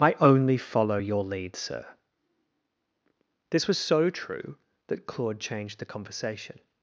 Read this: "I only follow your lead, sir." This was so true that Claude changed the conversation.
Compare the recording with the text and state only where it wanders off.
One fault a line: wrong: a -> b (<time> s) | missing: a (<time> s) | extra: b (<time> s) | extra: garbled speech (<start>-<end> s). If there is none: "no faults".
no faults